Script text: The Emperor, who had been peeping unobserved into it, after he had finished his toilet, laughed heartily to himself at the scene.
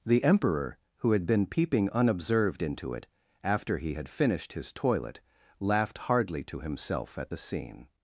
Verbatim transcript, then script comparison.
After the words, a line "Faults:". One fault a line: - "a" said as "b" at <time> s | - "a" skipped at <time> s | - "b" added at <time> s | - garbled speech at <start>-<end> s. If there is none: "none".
The Emperor, who had been peeping unobserved into it, after he had finished his toilet, laughed hardly to himself at the scene.
Faults:
- "heartily" said as "hardly" at 6.0 s